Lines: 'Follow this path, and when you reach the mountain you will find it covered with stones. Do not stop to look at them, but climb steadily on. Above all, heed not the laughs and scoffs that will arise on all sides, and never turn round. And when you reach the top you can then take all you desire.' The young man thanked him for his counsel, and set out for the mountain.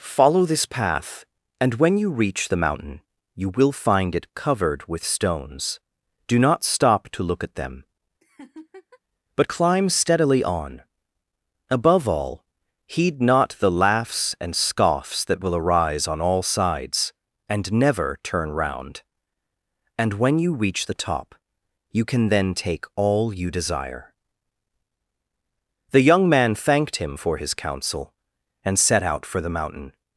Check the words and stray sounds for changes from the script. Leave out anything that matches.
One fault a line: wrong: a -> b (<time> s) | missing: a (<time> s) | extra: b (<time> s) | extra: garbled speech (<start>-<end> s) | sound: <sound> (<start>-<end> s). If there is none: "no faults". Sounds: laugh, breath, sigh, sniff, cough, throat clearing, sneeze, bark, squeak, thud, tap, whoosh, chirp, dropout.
sound: laugh (8.2-9.0 s)